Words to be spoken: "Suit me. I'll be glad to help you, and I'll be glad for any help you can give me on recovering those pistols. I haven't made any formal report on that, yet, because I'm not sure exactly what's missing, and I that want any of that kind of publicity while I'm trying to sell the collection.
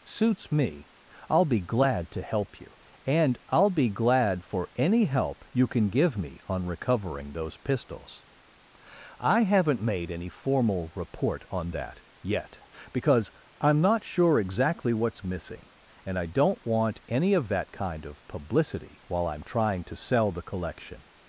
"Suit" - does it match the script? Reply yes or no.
no